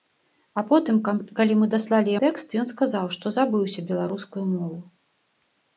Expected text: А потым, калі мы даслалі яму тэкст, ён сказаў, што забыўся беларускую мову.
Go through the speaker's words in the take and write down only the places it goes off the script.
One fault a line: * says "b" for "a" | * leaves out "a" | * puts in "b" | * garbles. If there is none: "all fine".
* leaves out "яму"